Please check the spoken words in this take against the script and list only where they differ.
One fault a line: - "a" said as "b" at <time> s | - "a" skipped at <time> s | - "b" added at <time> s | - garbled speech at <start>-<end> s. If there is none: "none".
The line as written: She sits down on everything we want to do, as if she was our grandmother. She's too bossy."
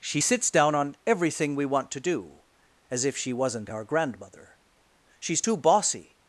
- "was" said as "wasn't" at 3.3 s